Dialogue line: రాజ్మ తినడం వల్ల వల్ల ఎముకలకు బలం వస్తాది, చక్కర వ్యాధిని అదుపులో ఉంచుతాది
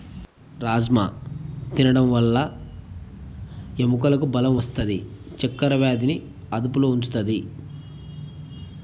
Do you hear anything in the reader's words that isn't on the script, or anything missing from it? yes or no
yes